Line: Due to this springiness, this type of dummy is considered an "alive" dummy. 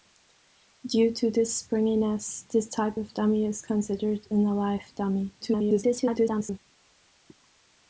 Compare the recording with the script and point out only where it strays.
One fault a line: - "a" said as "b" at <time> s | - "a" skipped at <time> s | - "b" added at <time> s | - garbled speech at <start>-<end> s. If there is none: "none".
- garbled speech at 5.4-6.6 s